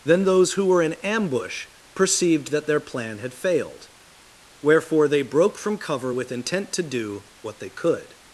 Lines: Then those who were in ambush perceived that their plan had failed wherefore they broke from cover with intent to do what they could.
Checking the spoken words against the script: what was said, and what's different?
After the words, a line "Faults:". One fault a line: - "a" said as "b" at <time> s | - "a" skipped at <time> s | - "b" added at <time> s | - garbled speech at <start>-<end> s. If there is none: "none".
Then those who were in ambush perceived that their plan had failed wherefore they broke from cover with intent to do what they could.
Faults:
none